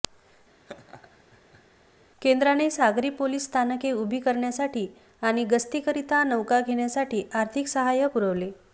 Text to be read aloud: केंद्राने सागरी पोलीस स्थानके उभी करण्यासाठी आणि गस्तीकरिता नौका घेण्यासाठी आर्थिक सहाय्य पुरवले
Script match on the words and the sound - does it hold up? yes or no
no